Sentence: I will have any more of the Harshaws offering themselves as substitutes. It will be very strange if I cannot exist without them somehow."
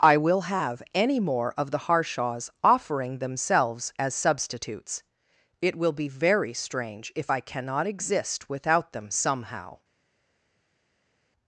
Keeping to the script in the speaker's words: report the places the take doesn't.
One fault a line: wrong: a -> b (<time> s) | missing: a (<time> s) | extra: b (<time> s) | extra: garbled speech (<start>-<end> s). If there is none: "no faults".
no faults